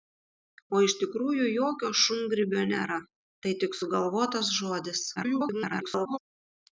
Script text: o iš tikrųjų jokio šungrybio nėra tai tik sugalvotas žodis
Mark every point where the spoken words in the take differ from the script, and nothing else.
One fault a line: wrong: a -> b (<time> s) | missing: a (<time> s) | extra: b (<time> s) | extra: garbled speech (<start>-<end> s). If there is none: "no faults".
extra: garbled speech (5.2-6.2 s)